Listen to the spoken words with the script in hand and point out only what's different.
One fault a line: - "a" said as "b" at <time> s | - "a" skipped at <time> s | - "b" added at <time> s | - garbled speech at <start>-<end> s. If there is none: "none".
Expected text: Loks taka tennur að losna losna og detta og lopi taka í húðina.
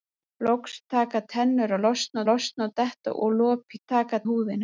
none